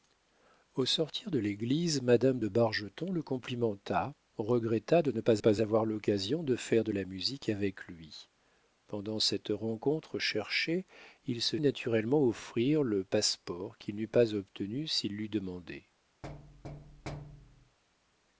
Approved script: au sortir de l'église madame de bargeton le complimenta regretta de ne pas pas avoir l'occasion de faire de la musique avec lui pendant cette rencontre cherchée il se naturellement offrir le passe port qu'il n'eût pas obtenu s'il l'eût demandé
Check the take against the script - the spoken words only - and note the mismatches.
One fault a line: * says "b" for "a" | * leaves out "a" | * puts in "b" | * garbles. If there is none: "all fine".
all fine